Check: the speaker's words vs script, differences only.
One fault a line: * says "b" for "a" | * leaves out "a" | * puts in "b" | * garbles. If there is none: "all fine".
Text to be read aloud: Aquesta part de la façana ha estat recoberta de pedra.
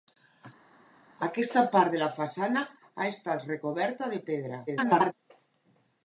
* garbles